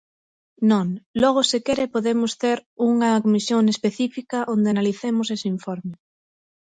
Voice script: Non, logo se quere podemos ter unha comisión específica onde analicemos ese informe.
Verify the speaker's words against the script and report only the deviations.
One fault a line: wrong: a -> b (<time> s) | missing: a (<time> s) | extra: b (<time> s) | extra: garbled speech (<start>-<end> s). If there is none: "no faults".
no faults